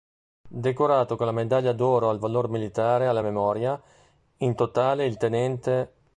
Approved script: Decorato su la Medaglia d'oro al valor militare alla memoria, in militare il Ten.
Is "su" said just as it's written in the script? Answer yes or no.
no